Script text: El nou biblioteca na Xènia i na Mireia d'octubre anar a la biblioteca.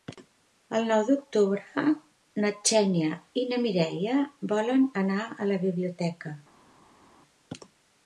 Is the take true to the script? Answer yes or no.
no